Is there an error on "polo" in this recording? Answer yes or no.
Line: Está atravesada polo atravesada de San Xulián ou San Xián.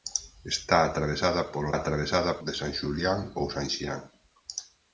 no